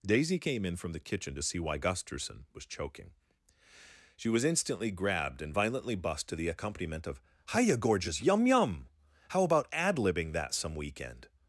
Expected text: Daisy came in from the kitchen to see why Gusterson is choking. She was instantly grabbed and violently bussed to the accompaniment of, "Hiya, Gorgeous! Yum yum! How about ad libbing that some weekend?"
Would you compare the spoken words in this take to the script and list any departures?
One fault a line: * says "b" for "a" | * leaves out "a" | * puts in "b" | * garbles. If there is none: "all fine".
* says "was" for "is"